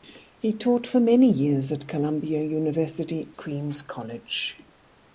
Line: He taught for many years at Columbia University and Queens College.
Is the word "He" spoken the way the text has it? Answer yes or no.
yes